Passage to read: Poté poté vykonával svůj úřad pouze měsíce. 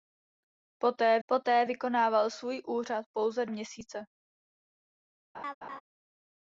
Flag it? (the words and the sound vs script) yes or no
yes